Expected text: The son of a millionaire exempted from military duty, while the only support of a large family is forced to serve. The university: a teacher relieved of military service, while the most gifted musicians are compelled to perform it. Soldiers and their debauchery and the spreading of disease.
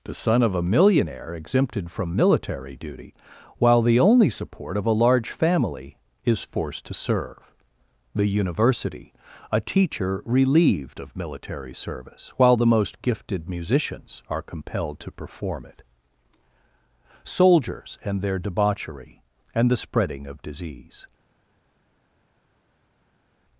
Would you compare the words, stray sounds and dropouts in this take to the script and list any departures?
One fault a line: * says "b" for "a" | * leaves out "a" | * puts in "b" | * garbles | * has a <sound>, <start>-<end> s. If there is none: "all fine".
all fine